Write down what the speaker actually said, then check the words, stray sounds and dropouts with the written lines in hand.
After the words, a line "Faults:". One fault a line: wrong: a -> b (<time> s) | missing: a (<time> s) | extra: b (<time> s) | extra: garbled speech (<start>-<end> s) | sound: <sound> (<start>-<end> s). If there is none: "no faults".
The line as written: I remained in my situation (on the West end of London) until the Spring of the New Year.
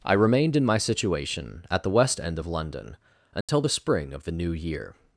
I remained in my situation (at the West end of London) until the Spring of the New Year.
Faults:
wrong: on -> at (1.7 s)
sound: dropout (3.4-3.5 s)